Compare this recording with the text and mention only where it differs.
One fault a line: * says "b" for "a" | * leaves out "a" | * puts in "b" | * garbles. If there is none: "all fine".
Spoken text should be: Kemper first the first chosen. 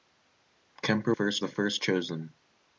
all fine